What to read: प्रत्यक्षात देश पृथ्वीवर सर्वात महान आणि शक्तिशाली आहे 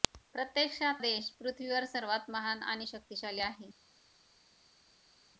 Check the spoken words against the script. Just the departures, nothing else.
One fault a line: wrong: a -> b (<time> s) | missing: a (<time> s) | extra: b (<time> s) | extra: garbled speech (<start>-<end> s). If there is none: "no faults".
no faults